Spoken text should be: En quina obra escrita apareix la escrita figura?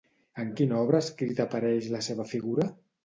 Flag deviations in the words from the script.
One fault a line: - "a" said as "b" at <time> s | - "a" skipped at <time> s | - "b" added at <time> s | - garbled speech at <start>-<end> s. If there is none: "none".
- "escrita" said as "seva" at 2.1 s